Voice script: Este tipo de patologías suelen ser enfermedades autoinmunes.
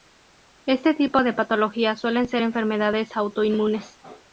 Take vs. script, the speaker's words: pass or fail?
pass